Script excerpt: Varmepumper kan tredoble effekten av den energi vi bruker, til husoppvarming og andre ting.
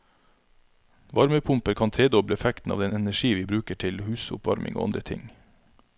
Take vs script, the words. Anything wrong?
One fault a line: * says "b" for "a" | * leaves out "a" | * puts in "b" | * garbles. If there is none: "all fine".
all fine